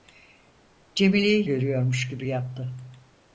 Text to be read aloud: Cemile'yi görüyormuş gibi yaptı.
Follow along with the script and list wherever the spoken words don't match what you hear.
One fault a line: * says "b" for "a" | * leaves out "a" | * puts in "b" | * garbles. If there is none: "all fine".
all fine